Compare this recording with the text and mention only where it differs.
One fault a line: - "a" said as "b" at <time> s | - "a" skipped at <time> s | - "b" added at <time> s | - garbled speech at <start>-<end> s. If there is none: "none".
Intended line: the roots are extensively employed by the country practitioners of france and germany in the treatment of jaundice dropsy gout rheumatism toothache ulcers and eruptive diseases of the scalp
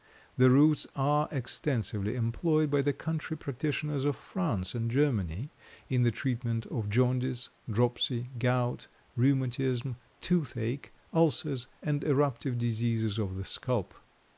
none